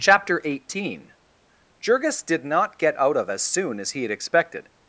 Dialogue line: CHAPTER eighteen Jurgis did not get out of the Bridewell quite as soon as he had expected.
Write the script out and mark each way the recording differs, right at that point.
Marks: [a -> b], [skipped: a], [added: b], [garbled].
CHAPTER eighteen Jurgis did not get out of [skipped: the Bridewell quite] as soon as he had expected.